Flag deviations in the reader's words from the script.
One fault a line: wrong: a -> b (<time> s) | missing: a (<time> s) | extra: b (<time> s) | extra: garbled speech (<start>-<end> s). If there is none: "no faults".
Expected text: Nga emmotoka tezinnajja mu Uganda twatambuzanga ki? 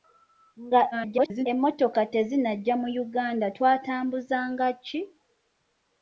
extra: garbled speech (0.9-1.5 s)